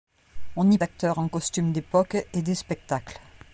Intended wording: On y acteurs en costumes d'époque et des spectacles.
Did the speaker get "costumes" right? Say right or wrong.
right